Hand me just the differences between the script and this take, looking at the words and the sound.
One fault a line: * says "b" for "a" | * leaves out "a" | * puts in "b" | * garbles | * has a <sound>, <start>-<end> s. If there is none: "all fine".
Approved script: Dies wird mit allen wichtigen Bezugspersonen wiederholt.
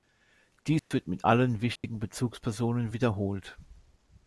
* has a dropout, 0.8-0.9 s
* has a dropout, 1.8-1.8 s